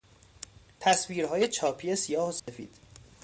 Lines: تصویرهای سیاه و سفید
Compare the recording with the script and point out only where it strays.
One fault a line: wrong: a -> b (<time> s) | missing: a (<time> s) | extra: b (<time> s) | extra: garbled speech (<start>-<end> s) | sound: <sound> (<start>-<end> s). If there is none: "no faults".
extra: چاپی (1.5 s)
sound: dropout (2.4-2.5 s)